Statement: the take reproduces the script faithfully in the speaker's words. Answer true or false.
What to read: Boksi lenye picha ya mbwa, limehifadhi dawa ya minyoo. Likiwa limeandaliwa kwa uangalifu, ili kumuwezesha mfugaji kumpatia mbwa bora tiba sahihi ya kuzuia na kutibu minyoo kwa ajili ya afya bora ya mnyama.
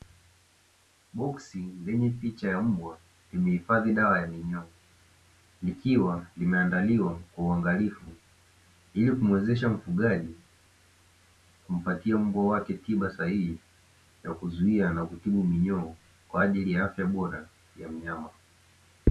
false